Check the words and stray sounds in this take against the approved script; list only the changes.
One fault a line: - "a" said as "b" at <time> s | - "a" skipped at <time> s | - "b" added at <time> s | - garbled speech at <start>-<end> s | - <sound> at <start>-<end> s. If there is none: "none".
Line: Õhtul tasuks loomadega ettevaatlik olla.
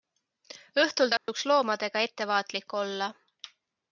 - dropout at 1.2-1.3 s